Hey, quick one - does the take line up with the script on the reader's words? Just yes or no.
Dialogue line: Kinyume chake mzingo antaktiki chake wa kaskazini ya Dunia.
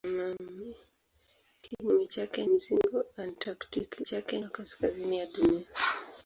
yes